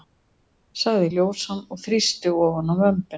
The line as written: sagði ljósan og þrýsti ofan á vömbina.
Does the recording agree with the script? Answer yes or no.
yes